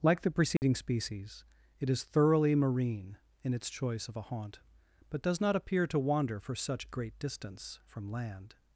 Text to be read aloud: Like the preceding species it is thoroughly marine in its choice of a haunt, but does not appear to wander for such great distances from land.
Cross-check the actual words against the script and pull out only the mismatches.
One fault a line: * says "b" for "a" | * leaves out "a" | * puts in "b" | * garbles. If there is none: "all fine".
* says "distance" for "distances"